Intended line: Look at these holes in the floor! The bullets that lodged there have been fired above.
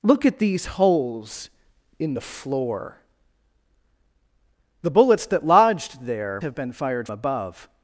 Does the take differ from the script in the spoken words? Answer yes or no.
no